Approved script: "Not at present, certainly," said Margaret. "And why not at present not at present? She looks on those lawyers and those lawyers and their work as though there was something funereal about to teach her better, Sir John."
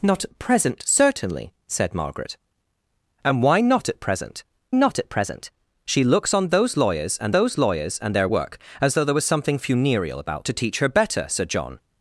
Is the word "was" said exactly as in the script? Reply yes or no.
yes